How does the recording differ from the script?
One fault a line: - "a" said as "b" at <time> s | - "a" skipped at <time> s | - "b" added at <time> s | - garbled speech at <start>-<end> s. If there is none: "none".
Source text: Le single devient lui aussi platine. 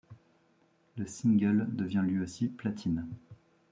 none